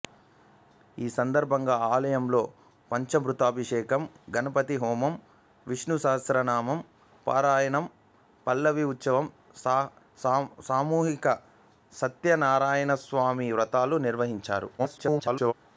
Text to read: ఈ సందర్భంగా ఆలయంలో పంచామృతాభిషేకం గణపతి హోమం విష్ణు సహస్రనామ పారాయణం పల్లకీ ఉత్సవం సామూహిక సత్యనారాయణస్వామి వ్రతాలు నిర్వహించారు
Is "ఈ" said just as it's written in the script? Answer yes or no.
yes